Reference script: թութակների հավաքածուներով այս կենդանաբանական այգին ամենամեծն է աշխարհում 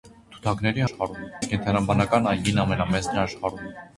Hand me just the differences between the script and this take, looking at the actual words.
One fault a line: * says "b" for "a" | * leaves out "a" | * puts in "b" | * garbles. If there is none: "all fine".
* says "աշխարհում" for "հավաքածուներով"